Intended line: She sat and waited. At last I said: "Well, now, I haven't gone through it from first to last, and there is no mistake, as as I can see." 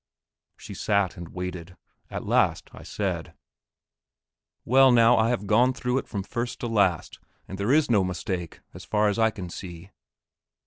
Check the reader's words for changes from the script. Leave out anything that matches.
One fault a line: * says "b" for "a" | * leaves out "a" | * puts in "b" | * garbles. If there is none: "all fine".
* says "have" for "haven't"
* puts in "far"